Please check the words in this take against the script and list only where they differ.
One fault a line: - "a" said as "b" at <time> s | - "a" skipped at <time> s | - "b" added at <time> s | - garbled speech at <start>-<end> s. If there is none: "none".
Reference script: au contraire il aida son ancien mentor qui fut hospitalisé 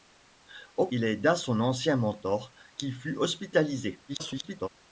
- "contraire" skipped at 0.9 s
- garbled speech at 4.1-4.7 s